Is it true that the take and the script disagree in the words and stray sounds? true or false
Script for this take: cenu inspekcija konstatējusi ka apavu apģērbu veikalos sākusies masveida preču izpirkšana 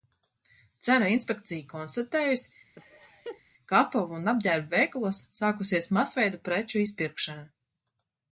true